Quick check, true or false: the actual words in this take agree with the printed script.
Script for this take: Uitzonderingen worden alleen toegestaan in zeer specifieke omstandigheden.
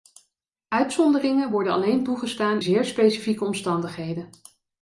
false